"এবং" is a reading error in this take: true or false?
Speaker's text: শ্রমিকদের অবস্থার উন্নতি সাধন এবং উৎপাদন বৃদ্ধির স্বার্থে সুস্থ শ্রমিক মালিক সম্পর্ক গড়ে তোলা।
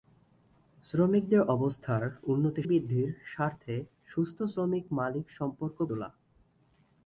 true